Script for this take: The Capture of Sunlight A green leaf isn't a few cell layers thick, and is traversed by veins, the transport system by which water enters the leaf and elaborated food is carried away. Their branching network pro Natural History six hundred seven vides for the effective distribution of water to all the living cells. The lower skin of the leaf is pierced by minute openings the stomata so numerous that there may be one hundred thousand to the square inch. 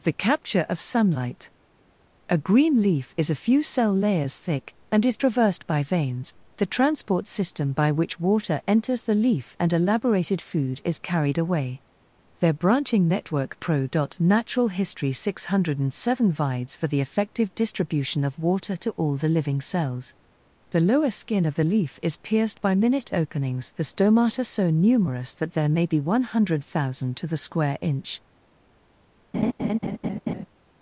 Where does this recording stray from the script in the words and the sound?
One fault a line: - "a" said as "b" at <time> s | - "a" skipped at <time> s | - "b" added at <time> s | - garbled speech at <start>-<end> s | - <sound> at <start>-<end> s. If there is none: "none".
- "isn't" said as "is" at 3.2 s
- laugh at 29.3-30.5 s